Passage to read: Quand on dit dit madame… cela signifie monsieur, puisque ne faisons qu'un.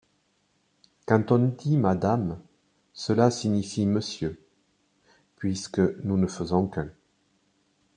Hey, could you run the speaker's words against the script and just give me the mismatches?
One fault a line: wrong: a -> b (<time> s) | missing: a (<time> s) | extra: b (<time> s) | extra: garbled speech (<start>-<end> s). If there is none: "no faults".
missing: dit (1.8 s)
extra: nous (6.0 s)